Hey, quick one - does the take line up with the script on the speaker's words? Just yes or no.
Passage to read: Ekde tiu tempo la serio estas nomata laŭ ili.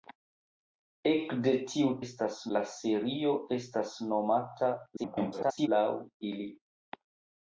no